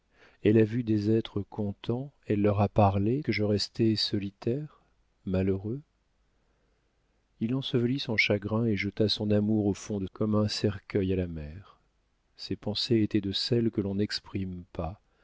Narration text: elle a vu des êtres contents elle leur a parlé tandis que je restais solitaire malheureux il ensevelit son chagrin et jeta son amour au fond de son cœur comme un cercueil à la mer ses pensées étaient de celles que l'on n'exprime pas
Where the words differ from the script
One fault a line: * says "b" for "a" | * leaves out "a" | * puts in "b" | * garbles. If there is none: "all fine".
* leaves out "tandis"
* leaves out "son cœur"